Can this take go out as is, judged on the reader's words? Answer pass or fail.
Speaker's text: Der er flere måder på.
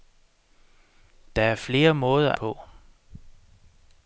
pass